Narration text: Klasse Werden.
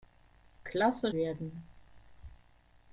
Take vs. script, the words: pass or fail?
pass